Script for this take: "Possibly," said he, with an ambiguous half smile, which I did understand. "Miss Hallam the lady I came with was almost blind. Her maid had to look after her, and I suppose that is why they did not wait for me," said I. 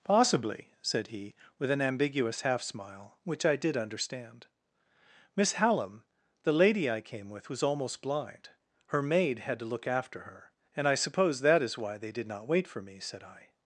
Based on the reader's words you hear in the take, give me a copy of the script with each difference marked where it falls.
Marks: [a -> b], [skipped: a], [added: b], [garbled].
"Possibly," said he, with an ambiguous half smile, which I did understand. "Miss Hallam the lady I came with was almost blind. Her maid had to look after her, and I suppose that is why they did not wait for me," said I.